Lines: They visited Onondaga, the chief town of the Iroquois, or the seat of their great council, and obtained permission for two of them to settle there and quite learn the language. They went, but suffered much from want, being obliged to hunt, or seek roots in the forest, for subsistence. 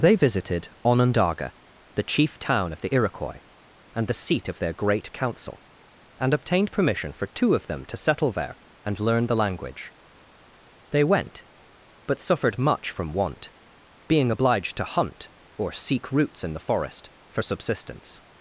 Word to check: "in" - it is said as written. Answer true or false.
true